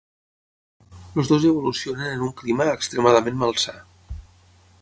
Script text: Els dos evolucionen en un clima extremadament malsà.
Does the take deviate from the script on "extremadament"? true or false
false